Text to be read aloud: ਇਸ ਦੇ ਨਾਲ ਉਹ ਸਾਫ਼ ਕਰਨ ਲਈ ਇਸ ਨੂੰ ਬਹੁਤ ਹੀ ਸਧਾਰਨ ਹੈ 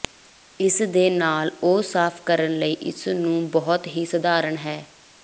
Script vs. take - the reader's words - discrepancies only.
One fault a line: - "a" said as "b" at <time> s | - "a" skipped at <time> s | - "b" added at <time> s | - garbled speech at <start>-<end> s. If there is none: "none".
none